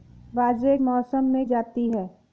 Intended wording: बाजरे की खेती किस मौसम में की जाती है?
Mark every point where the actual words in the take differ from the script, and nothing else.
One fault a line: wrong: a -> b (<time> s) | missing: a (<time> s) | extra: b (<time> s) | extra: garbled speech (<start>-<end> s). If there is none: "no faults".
missing: की खेती किस (0.8 s)
missing: की (1.5 s)